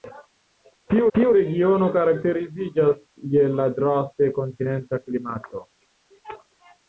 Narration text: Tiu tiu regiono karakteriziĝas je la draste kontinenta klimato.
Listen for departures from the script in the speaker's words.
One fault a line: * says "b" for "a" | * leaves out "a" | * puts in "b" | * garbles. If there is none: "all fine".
all fine